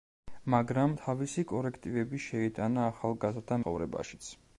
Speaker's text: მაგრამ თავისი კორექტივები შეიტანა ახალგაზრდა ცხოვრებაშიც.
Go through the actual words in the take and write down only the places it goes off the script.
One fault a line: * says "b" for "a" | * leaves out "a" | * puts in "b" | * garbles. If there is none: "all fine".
all fine